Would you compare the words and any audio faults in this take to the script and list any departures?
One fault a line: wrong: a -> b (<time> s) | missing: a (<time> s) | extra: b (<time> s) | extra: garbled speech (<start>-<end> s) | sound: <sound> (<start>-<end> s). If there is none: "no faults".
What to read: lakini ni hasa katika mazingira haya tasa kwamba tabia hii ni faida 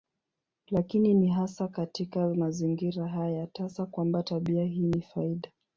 no faults